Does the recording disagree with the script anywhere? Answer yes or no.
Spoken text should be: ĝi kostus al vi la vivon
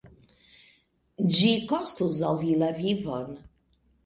no